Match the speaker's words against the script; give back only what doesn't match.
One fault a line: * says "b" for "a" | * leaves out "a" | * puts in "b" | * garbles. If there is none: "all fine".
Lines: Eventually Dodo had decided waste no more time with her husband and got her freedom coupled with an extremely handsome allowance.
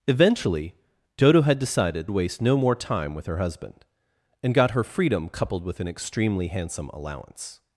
all fine